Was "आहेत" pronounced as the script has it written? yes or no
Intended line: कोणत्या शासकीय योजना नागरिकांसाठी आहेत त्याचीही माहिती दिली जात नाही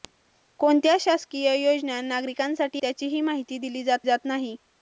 no